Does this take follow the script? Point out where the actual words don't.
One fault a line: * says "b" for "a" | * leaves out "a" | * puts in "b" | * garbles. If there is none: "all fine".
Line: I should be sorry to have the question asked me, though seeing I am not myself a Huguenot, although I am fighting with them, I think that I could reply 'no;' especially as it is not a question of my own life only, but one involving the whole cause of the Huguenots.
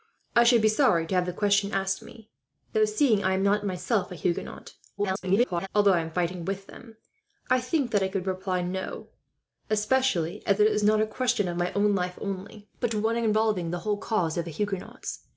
* garbles